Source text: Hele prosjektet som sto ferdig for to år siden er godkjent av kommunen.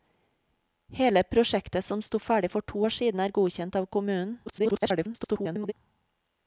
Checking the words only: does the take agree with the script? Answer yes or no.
no